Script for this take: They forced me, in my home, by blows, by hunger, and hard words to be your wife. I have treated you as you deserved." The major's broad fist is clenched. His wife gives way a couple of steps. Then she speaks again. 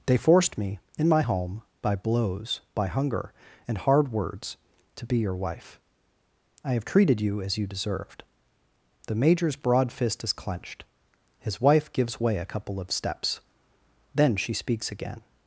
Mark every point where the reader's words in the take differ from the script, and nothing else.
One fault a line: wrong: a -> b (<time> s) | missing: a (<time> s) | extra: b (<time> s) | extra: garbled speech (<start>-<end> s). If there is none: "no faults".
no faults